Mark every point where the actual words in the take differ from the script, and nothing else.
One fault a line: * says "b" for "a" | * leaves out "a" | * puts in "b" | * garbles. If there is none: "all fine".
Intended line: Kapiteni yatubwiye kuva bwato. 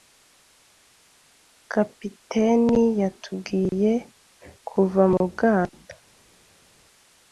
* puts in "mu"